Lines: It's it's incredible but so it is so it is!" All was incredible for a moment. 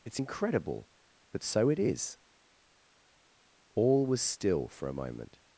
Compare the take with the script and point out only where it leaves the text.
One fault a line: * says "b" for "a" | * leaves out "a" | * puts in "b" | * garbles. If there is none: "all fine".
* leaves out "it's"
* leaves out "so it is"
* says "still" for "incredible"